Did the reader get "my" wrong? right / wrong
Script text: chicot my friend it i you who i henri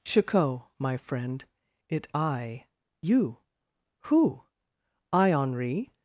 right